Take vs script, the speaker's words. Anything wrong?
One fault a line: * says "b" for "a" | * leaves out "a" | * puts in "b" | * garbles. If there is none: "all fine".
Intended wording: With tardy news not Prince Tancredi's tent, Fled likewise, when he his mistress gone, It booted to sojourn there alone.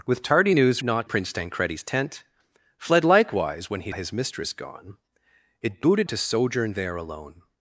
all fine